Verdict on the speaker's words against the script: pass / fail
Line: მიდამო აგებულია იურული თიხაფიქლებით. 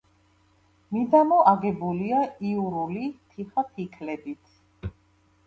pass